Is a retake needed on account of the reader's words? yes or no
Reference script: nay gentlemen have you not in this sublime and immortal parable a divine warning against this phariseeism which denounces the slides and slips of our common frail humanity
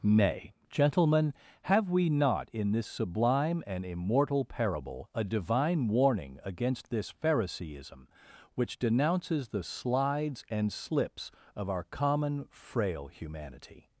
yes